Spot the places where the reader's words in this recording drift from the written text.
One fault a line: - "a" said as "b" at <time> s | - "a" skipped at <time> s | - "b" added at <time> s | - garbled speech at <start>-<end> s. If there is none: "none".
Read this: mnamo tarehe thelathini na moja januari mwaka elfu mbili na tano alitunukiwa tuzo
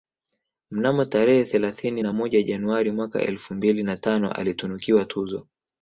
none